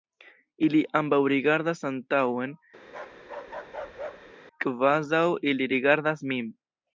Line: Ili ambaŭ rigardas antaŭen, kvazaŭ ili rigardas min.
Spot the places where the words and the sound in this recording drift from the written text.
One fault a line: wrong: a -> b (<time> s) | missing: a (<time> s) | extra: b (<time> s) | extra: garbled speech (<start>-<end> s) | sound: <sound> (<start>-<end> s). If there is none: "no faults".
sound: bark (2.8-4.3 s)